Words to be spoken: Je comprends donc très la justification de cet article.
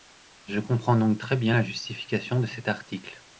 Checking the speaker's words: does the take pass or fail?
fail